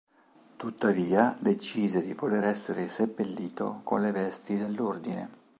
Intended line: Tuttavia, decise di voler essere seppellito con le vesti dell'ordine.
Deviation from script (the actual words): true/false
false